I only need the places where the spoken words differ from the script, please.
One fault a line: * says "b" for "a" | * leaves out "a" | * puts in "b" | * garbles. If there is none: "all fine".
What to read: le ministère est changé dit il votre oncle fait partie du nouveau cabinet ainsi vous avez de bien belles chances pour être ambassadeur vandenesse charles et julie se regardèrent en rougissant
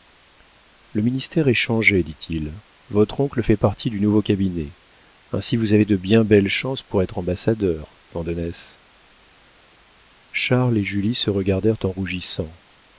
all fine